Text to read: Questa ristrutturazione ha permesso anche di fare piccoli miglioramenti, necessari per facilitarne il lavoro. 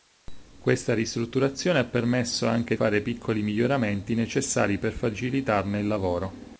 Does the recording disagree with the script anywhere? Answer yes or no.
yes